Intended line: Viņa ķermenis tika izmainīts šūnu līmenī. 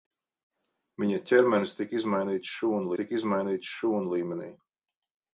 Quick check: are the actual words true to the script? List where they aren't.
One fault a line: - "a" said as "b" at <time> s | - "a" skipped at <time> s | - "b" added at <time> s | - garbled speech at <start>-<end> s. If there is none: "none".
- "tika izmainīts šūnu" added at 3.0 s